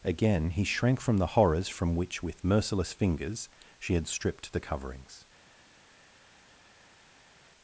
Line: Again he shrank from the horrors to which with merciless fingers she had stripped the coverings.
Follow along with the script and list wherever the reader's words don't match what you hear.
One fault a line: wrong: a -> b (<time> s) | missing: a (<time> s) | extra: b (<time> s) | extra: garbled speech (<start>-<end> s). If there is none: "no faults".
wrong: to -> from (1.7 s)